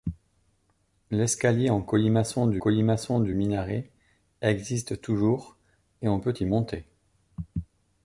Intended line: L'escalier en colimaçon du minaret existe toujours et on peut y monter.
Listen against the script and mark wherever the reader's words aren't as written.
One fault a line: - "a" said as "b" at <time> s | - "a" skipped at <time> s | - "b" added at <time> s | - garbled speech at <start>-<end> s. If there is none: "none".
- "colimaçon du" added at 2.6 s